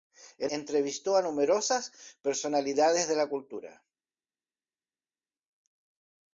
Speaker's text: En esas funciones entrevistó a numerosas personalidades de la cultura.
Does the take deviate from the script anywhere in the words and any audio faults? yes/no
yes